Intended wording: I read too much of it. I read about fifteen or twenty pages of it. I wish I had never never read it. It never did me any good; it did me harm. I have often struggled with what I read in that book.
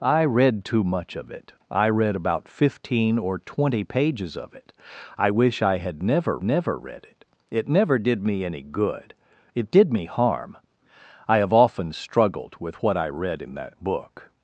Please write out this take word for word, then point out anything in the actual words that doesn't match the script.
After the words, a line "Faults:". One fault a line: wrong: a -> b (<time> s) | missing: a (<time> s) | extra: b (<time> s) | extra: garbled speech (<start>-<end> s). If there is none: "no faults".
I read too much of it. I read about fifteen or twenty pages of it. I wish I had never never read it. It never did me any good; it did me harm. I have often struggled with what I read in that book.
Faults:
no faults